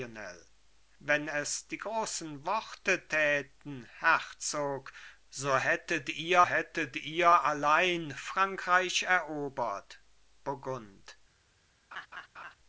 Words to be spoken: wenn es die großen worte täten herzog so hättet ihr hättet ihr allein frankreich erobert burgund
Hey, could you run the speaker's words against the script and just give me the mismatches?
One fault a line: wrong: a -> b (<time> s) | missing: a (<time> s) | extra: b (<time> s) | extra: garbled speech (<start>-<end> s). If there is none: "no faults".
no faults